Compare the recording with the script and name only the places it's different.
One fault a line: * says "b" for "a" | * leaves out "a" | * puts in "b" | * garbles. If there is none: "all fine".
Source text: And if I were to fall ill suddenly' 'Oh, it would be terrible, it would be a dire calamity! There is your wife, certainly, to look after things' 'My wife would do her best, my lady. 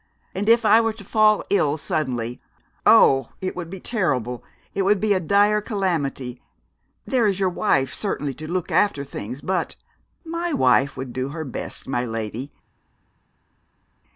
* puts in "but"